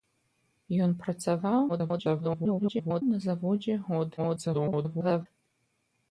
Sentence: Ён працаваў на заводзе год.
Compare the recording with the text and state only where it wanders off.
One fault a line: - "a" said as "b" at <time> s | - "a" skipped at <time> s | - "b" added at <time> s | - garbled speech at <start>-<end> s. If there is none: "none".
- garbled speech at 1.7-3.0 s
- garbled speech at 4.2-5.3 s